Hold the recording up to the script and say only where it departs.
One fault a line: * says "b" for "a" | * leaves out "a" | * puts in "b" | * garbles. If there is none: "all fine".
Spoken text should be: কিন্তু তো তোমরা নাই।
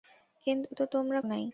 all fine